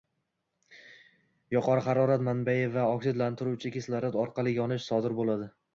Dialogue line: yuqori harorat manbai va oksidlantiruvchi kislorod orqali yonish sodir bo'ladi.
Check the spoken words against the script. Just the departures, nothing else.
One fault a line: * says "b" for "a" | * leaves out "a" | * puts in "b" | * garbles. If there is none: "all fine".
all fine